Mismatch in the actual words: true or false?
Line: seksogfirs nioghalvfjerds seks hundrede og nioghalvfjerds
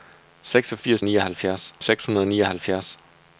false